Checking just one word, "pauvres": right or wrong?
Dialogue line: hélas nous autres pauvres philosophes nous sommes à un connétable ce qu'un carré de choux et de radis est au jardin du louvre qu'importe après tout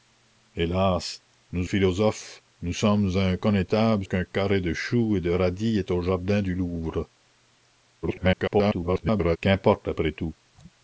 wrong